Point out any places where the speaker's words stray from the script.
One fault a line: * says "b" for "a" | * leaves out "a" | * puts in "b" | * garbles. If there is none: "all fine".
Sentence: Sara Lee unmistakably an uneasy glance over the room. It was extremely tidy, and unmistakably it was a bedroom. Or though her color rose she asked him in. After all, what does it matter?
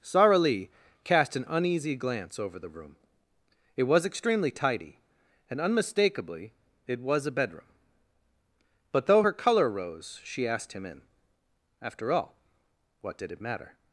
* says "cast" for "unmistakably"
* says "But" for "Or"
* says "did" for "does"